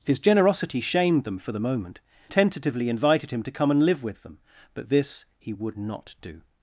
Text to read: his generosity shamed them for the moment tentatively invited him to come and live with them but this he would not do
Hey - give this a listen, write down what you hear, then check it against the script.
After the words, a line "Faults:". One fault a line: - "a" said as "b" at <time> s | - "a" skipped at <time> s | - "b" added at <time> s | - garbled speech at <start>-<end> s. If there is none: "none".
his generosity shamed them for the moment tentatively invited him to come and live with them but this he would not do
Faults:
none